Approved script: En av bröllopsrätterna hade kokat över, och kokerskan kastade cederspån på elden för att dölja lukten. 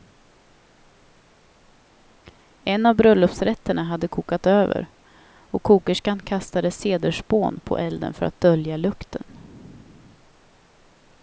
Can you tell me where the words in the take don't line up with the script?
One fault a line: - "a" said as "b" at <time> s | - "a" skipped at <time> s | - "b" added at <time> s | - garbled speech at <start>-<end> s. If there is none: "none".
none